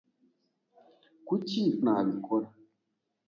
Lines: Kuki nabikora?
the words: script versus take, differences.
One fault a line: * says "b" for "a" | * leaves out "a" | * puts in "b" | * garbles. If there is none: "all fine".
all fine